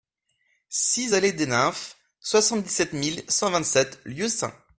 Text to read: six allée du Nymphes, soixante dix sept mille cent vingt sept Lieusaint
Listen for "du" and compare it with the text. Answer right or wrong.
wrong